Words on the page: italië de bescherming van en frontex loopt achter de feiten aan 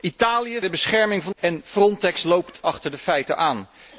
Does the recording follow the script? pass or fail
pass